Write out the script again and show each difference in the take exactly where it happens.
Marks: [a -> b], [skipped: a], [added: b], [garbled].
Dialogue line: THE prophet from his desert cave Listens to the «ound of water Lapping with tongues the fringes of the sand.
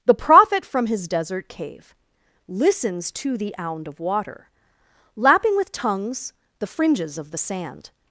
THE prophet from his desert cave Listens to the «ound of water Lapping with tongues the fringes of the sand.